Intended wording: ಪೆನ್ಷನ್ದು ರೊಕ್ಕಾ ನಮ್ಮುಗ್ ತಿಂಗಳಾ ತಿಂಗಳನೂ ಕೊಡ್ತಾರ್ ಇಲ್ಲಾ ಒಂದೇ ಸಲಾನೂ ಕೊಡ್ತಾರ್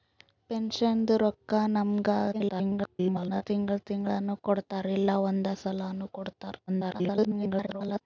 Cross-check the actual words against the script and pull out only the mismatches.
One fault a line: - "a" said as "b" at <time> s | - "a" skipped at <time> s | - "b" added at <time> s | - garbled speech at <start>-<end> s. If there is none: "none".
- garbled speech at 2.3-3.4 s
- garbled speech at 6.7-8.0 s